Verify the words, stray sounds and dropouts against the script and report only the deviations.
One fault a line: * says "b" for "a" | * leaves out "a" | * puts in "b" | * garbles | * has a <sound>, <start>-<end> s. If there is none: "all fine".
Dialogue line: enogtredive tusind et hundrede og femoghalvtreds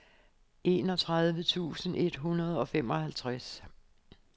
all fine